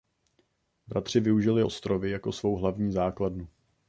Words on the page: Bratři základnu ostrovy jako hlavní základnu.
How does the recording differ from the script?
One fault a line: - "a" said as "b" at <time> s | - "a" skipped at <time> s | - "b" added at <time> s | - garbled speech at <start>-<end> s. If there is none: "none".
- "základnu" said as "využili" at 1.2 s
- "svou" added at 2.3 s